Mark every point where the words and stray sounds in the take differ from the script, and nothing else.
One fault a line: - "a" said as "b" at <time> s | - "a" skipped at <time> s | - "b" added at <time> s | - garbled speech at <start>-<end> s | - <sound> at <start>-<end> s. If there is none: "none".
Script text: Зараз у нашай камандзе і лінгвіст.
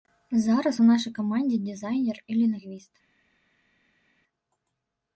- "дызайнер" added at 1.6 s